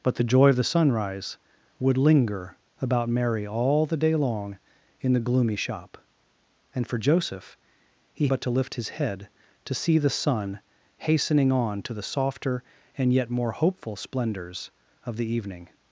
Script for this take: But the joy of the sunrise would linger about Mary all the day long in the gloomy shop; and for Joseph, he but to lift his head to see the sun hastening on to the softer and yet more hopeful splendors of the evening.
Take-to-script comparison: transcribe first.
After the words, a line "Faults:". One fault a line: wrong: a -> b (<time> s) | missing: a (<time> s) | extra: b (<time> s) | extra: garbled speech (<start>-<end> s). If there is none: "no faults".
But the joy of the sunrise would linger about Mary all the day long in the gloomy shop; and for Joseph, he but to lift his head to see the sun hastening on to the softer and yet more hopeful splendors of the evening.
Faults:
no faults